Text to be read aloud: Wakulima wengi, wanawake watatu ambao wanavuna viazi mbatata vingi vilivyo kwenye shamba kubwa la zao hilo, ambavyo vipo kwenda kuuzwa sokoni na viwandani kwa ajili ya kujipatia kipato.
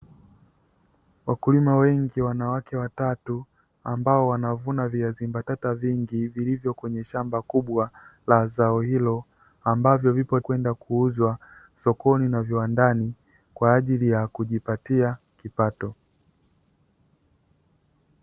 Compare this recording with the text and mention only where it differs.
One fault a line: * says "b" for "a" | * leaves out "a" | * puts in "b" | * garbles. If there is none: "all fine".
all fine